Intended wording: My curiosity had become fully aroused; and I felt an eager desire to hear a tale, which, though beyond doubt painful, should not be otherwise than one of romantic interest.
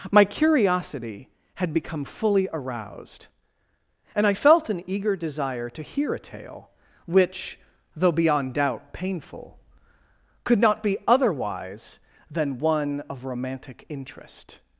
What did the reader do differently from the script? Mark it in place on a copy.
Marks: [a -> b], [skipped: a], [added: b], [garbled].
My curiosity had become fully aroused; and I felt an eager desire to hear a tale, which, though beyond doubt painful, [should -> could] not be otherwise than one of romantic interest.